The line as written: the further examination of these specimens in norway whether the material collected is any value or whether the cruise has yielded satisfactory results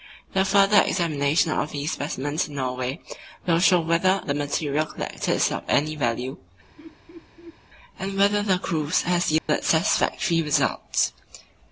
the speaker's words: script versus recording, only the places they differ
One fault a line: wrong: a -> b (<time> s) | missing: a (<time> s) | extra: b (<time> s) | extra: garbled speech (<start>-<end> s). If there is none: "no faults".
extra: will show (3.5 s)
extra: of (5.5 s)
wrong: or -> and (8.0 s)